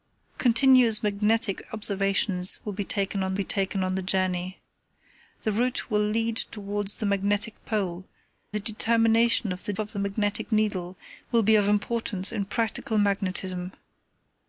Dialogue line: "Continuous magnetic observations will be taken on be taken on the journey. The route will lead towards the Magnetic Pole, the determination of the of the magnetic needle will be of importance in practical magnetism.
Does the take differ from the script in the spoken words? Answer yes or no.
no